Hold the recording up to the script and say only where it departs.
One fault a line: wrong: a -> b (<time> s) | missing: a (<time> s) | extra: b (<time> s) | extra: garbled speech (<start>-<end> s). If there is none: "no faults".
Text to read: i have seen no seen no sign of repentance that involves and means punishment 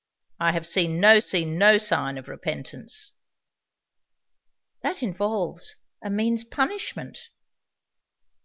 no faults